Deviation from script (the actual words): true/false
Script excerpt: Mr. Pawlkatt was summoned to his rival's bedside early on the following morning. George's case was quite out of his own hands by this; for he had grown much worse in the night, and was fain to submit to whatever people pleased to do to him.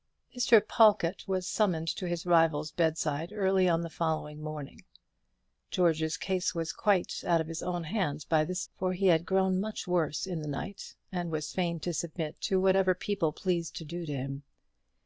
false